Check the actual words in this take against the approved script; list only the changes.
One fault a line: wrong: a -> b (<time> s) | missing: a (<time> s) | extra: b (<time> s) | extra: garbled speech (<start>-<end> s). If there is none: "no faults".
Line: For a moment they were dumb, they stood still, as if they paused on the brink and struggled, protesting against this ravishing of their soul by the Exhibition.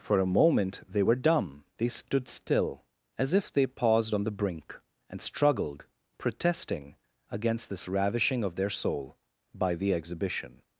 no faults